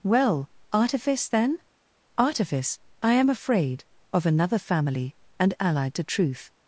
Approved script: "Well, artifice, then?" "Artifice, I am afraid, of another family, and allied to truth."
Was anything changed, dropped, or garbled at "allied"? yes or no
no